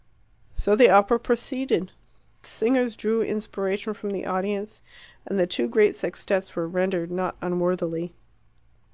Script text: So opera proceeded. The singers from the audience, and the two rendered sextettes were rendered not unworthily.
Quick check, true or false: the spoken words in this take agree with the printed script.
false